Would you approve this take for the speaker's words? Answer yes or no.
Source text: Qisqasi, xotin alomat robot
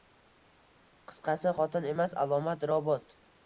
no